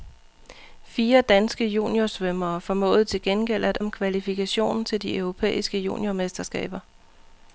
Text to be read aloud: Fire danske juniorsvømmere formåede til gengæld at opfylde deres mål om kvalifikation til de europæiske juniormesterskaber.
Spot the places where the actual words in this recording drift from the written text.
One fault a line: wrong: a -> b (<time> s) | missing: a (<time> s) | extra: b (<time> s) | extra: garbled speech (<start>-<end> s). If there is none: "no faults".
missing: opfylde deres mål (3.8 s)